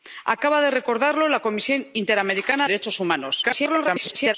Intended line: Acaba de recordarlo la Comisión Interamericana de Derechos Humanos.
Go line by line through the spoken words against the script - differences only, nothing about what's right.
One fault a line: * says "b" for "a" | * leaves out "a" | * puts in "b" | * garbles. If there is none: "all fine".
* leaves out "de"
* garbles